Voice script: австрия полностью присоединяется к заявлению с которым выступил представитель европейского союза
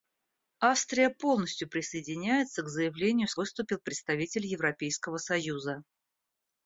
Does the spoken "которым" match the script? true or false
false